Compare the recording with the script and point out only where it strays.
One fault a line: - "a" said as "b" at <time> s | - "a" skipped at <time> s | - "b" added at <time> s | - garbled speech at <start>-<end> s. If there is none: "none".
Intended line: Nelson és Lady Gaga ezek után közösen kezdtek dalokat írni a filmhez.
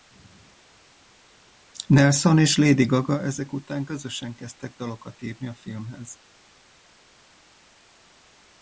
none